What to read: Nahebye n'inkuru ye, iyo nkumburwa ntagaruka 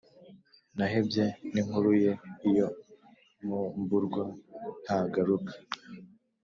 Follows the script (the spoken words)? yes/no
yes